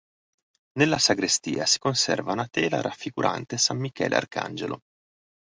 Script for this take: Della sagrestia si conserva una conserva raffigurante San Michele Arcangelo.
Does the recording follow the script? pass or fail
fail